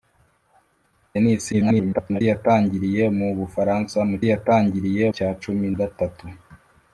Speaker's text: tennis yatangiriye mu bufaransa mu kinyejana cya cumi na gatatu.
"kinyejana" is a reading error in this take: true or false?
true